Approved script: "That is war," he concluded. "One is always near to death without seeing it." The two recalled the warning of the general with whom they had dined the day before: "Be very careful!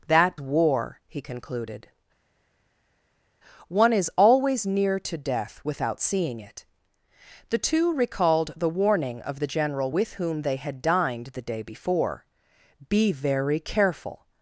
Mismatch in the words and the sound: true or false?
true